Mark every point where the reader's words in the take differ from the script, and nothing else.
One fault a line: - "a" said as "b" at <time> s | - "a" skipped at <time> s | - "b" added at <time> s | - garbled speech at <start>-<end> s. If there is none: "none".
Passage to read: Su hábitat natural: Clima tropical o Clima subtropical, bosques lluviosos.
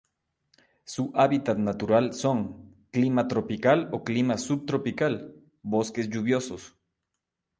- "son" added at 2.1 s